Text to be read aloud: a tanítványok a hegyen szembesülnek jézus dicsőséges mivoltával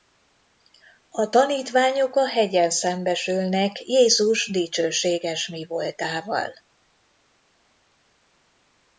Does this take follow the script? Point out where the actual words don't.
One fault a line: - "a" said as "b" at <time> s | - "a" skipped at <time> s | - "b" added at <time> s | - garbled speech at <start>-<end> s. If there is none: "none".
none